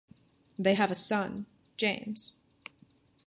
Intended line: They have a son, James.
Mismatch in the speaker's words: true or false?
false